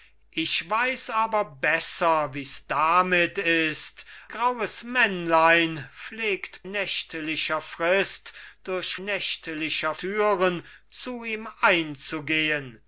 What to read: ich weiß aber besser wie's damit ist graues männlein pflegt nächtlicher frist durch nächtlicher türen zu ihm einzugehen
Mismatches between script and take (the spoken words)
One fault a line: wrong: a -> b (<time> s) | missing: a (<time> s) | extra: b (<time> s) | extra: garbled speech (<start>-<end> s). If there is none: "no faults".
no faults